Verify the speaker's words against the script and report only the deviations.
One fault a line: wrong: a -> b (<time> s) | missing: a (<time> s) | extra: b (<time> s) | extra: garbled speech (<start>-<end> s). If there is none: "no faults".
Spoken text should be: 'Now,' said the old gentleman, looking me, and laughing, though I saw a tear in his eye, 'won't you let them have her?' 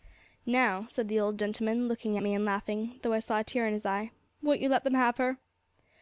no faults